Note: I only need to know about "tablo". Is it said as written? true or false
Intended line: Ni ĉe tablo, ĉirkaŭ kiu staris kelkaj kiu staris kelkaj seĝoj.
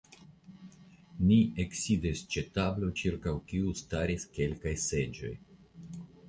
true